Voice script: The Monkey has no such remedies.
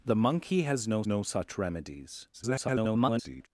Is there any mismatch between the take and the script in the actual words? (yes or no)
yes